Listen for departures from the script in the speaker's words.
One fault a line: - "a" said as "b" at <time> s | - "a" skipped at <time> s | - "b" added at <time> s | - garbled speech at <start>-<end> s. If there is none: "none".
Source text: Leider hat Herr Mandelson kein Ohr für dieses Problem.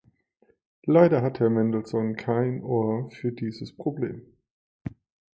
none